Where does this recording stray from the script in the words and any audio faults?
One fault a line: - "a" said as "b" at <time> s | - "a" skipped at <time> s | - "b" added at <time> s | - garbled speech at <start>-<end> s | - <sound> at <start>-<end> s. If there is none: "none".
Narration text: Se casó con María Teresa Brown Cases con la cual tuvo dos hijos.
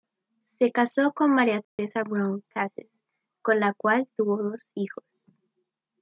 - dropout at 1.6-1.8 s